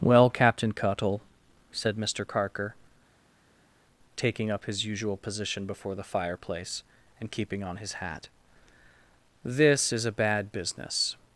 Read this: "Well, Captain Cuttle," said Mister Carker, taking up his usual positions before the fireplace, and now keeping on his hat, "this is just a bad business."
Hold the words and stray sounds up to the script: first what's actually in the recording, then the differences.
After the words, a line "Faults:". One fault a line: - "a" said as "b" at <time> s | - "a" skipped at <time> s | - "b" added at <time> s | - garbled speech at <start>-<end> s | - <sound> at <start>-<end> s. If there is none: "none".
"Well, Captain Cuttle," said Mister Carker, taking up his usual position before the fireplace, and keeping on his hat, "this is a bad business."
Faults:
- "positions" said as "position" at 5.2 s
- "now" skipped at 7.3 s
- "just" skipped at 10.1 s